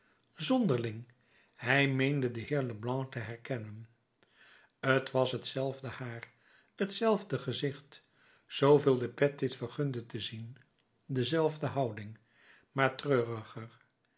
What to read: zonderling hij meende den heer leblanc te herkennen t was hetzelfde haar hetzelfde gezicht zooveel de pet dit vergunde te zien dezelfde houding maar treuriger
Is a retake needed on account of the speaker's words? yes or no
no